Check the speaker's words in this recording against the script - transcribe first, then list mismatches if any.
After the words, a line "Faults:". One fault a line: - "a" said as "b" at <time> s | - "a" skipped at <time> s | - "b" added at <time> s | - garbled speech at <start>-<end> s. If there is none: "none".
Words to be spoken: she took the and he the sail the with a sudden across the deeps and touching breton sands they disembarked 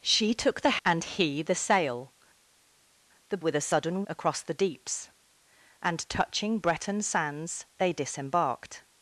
she took the and he the sail the with a sudden across the deeps and touching breton sands they disembarked
Faults:
none